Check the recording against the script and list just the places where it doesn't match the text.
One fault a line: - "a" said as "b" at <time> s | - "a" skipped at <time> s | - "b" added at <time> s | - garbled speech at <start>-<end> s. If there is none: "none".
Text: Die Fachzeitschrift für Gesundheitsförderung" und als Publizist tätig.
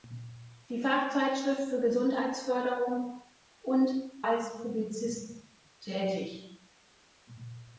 none